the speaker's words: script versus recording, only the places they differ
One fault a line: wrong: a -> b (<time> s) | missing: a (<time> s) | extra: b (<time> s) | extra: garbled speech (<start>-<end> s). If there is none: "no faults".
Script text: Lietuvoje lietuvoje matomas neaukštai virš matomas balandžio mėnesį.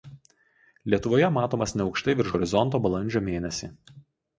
missing: lietuvoje (1.3 s)
wrong: matomas -> horizonto (2.4 s)